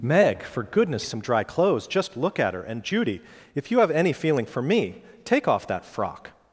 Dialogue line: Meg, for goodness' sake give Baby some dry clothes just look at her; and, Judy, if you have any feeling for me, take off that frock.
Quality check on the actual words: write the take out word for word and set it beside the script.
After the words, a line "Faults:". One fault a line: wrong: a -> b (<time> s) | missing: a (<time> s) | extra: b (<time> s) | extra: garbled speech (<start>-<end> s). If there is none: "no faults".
Meg, for goodness' some dry clothes just look at her; and, Judy, if you have any feeling for me, take off that frock.
Faults:
missing: sake give Baby (1.0 s)